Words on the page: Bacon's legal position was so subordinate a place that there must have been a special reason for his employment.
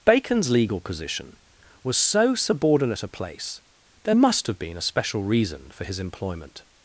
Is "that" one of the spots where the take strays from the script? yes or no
yes